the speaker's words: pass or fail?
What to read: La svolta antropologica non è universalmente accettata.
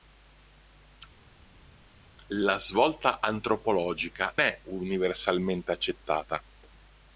fail